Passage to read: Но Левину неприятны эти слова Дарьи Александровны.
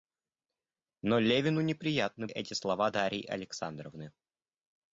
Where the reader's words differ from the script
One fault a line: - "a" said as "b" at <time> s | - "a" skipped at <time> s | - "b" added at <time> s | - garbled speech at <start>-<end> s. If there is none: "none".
none